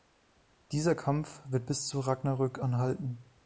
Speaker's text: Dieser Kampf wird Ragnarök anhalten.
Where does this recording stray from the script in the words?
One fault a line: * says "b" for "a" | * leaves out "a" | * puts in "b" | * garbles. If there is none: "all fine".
* puts in "bis zu"